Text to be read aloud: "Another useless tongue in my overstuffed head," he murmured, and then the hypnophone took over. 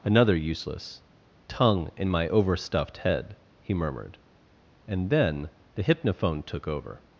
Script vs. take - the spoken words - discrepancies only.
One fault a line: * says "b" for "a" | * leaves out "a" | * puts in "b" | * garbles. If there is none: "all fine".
all fine